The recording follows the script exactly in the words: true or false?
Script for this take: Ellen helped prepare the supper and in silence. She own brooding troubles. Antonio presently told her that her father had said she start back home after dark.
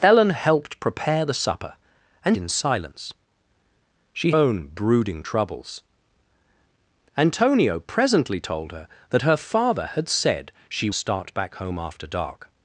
true